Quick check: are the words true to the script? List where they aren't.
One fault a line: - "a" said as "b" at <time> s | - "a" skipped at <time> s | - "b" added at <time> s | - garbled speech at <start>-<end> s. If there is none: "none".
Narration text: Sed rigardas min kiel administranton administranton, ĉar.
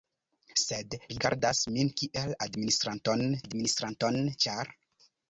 none